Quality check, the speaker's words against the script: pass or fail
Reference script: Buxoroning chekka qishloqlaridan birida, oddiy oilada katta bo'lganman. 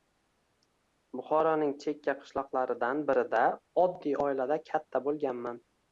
pass